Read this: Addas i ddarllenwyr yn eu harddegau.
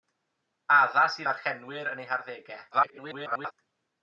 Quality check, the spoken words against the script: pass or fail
fail